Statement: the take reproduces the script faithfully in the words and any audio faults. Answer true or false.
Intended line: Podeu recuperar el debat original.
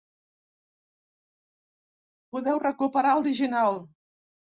false